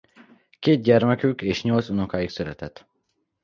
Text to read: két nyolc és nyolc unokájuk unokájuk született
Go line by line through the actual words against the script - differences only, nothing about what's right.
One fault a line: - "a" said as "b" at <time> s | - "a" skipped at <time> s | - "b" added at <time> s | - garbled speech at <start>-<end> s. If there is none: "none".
- "nyolc" said as "gyermekük" at 0.8 s
- "unokájuk" skipped at 2.3 s